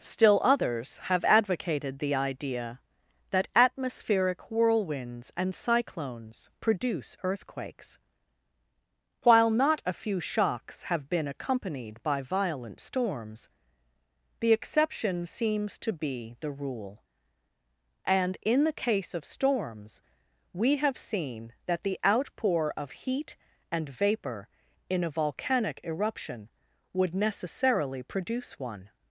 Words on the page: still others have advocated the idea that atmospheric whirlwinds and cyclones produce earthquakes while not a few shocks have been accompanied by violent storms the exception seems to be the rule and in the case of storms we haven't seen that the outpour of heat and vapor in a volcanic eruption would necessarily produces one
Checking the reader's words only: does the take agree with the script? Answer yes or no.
no